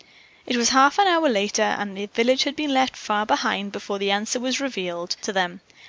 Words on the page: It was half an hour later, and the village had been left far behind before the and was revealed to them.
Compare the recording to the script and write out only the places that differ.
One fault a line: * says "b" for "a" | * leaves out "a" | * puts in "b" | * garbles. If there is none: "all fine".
* says "answer" for "and"